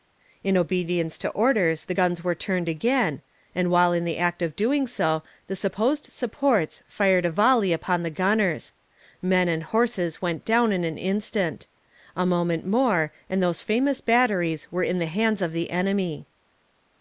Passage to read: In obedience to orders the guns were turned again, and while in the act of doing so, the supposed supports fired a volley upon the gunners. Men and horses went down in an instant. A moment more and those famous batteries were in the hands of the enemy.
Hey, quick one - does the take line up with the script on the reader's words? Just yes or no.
yes